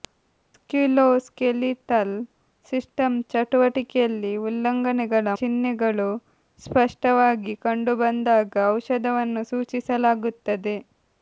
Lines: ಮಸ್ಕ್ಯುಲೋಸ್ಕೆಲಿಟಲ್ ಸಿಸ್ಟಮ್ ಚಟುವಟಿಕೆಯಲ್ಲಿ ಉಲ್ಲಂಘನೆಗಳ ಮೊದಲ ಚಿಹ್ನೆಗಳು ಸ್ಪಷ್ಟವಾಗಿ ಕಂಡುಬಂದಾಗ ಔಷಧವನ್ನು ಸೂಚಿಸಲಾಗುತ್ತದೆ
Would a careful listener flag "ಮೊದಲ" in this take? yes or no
yes